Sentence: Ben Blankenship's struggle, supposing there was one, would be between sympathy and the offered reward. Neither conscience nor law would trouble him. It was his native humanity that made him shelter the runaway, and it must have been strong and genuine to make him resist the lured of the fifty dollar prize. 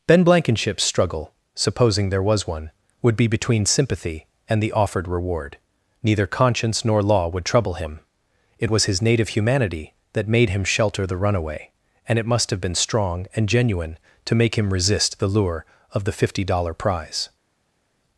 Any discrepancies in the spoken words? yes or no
yes